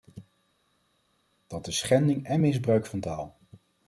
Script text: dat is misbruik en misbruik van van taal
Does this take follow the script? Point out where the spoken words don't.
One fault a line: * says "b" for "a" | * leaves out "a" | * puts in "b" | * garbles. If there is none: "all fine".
* says "schending" for "misbruik"
* leaves out "van"